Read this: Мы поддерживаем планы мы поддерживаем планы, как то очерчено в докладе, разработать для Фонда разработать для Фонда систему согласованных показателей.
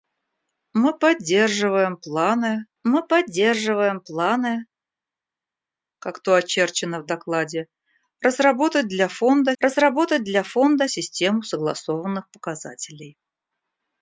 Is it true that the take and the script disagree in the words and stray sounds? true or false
false